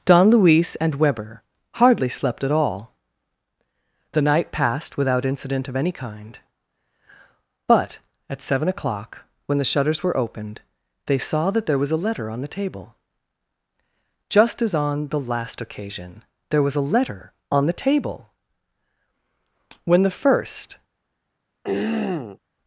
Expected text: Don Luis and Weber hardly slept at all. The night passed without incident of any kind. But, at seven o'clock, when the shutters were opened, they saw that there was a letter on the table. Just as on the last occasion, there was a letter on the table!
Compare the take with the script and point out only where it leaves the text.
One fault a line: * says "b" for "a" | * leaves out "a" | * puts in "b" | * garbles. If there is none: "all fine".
* puts in "When the first"